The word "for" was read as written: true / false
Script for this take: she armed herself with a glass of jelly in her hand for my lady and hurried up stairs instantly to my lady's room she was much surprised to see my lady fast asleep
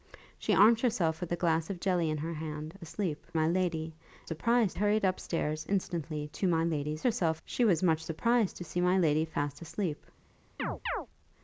false